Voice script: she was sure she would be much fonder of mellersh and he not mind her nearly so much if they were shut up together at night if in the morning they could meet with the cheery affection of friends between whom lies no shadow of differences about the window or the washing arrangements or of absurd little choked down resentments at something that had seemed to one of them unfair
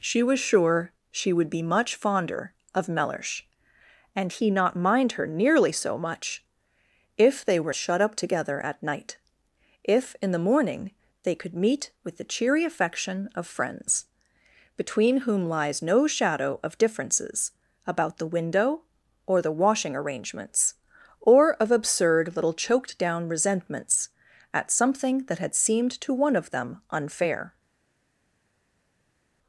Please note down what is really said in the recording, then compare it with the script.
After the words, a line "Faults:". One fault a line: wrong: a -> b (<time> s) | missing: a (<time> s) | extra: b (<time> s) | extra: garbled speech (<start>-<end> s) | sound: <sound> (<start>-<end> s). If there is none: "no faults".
she was sure she would be much fonder of mellersh and he not mind her nearly so much if they were shut up together at night if in the morning they could meet with the cheery affection of friends between whom lies no shadow of differences about the window or the washing arrangements or of absurd little choked down resentments at something that had seemed to one of them unfair
Faults:
no faults